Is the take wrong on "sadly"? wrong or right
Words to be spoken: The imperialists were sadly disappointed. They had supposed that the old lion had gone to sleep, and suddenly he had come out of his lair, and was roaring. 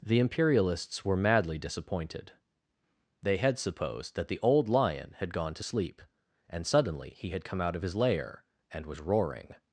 wrong